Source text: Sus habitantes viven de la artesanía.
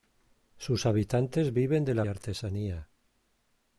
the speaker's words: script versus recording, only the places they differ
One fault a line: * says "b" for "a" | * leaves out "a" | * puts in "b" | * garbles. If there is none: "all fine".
all fine